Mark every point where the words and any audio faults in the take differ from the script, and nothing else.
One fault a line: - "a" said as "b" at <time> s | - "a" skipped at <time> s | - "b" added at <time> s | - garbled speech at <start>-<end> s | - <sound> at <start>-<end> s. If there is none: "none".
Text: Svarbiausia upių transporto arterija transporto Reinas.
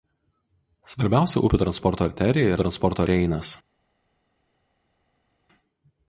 none